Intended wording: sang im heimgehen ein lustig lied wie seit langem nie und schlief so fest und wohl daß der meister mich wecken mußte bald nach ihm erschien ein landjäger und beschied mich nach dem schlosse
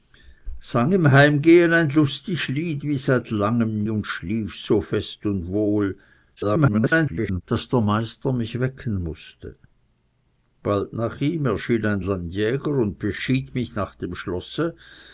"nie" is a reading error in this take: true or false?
true